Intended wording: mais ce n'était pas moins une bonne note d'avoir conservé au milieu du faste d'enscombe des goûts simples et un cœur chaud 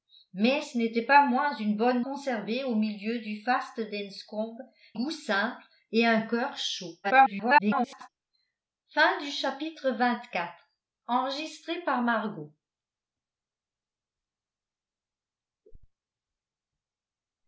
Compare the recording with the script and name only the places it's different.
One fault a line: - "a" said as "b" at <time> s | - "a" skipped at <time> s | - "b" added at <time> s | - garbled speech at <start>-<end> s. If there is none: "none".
- "note d'avoir" skipped at 2.0 s
- "des" skipped at 4.6 s
- garbled speech at 7.0-8.1 s